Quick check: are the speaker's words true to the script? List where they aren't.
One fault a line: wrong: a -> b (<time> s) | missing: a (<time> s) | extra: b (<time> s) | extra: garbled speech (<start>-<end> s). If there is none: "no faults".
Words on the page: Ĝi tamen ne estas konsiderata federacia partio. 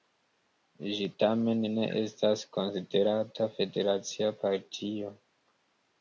no faults